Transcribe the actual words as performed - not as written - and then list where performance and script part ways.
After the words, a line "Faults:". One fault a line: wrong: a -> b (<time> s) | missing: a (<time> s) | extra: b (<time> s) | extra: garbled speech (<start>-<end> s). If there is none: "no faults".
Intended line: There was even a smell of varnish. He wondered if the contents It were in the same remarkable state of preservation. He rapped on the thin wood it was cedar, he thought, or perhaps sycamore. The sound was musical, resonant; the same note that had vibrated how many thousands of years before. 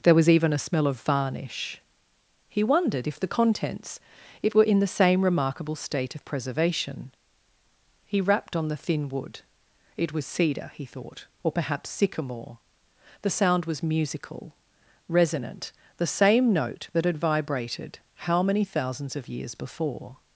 There was even a smell of varnish. He wondered if the contents It were in the same remarkable state of preservation. He rapped on the thin wood it was cedar, he thought, or perhaps sycamore. The sound was musical, resonant; the same note that had vibrated how many thousands of years before.
Faults:
no faults